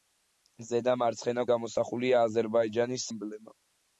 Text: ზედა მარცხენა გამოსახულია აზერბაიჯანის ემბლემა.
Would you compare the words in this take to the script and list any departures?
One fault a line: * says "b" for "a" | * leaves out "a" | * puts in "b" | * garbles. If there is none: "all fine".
all fine